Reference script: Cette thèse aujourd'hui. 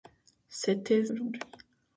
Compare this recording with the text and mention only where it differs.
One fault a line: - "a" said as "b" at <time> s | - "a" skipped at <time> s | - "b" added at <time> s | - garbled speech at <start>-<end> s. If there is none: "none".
none